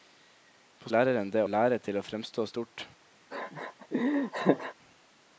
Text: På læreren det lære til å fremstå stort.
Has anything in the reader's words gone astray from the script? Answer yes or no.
no